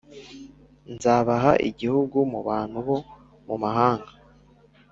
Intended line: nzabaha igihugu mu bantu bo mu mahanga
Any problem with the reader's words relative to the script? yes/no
no